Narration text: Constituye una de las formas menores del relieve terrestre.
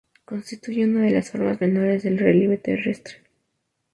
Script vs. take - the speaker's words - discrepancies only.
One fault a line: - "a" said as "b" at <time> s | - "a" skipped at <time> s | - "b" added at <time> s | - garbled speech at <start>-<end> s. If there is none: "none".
none